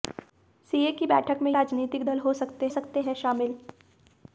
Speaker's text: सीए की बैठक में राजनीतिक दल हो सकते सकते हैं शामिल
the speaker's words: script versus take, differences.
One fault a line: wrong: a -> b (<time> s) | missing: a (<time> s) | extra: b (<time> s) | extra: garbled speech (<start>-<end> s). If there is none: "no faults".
no faults